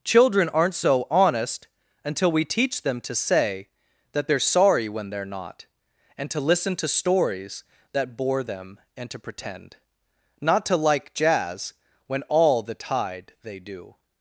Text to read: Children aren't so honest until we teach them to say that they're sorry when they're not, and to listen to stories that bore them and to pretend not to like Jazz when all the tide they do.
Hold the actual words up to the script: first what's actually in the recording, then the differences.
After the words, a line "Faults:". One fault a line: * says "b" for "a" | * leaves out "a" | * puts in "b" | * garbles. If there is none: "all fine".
Children aren't so honest until we teach them to say that they're sorry when they're not, and to listen to stories that bore them and to pretend not to like Jazz when all the tide they do.
Faults:
all fine